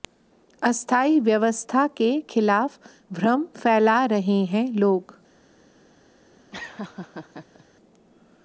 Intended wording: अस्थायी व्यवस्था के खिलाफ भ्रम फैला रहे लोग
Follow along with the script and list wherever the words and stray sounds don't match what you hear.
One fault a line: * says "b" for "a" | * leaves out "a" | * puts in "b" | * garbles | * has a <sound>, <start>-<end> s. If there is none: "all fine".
* puts in "हैं"
* has a laugh, 6.5-7.7 s